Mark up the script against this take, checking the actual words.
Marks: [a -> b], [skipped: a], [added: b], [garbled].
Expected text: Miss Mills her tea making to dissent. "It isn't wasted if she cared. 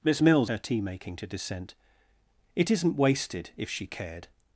Miss Mills her tea making to dissent. "It isn't wasted if she cared.